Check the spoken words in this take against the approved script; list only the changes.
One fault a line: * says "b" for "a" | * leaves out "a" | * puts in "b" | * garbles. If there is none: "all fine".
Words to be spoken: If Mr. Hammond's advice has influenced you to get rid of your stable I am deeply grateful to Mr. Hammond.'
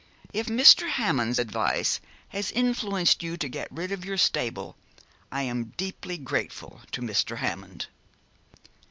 all fine